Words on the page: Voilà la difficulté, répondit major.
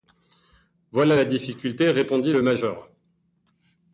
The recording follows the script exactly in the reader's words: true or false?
false